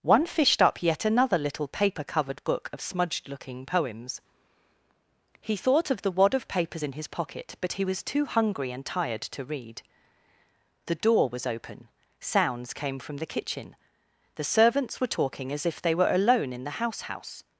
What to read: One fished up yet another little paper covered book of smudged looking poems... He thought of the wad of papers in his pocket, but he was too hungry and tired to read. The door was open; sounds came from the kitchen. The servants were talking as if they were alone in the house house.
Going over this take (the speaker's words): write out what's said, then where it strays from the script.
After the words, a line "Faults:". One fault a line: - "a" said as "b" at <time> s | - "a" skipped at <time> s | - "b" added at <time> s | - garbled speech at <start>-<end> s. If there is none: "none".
One fished up yet another little paper covered book of smudged looking poems... He thought of the wad of papers in his pocket, but he was too hungry and tired to read. The door was open; sounds came from the kitchen. The servants were talking as if they were alone in the house house.
Faults:
none